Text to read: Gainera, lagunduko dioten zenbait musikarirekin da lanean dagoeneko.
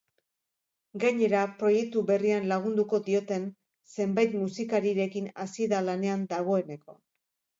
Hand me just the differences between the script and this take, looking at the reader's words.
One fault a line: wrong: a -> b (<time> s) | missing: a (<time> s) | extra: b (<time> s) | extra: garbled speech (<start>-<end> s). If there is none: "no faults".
extra: proiektu berrian (1.6 s)
extra: hasi (5.4 s)